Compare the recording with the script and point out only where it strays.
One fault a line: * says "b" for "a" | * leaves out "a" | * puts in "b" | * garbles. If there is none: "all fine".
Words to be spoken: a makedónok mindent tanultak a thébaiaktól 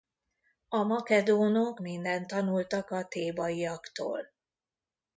all fine